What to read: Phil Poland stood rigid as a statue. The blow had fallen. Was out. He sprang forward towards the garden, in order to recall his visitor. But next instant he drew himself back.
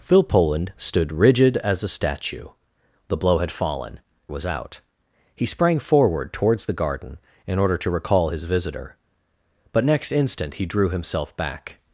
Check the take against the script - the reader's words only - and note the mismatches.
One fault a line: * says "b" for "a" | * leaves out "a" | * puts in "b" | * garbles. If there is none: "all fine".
all fine